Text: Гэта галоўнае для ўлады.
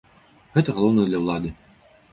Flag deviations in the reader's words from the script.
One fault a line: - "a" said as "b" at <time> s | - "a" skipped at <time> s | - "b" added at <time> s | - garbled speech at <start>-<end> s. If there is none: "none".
none